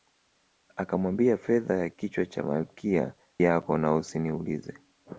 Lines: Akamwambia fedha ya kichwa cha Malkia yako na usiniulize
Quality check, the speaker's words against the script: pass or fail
pass